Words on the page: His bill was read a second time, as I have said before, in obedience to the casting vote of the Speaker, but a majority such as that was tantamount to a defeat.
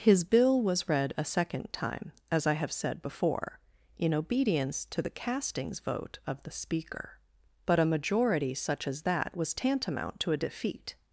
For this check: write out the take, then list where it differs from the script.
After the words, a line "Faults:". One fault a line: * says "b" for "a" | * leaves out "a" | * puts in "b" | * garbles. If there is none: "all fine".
His bill was read a second time, as I have said before, in obedience to the castings vote of the Speaker, but a majority such as that was tantamount to a defeat.
Faults:
* says "castings" for "casting"